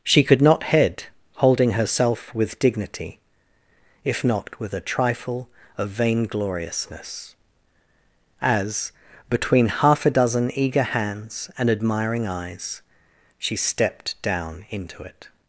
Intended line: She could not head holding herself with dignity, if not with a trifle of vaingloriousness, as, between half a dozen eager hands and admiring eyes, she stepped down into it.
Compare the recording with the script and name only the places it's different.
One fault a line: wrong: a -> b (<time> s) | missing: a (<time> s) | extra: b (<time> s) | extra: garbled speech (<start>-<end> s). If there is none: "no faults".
no faults